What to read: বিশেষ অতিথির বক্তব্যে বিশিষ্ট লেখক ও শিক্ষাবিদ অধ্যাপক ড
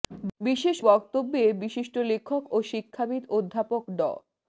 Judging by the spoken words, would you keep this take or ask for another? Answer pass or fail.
fail